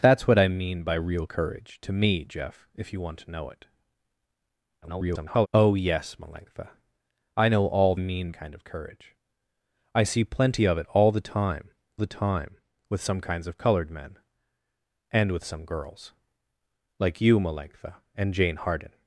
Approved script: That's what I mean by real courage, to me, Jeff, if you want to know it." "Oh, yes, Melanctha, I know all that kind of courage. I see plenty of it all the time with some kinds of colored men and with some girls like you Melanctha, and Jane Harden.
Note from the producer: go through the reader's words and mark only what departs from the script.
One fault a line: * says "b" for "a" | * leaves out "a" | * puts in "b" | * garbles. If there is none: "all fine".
* garbles
* says "mean" for "that"
* puts in "the time"